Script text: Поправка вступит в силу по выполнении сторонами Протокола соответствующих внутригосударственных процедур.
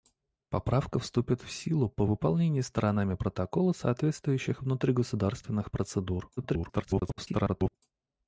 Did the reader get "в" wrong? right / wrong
right